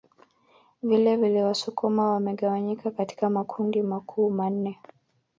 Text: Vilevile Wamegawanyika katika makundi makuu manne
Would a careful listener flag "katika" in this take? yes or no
no